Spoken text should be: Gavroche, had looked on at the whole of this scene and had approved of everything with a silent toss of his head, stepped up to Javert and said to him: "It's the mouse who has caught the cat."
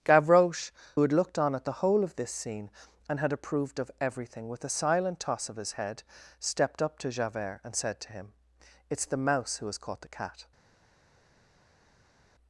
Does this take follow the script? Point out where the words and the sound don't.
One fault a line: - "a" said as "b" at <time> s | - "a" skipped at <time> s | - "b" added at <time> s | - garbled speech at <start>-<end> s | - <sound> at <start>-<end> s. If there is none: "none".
none